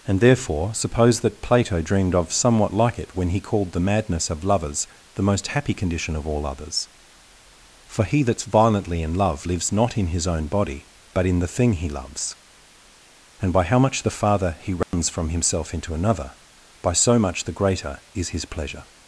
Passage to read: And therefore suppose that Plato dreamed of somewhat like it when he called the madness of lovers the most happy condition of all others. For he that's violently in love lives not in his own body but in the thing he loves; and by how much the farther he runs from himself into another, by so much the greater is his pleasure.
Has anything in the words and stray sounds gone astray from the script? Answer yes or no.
yes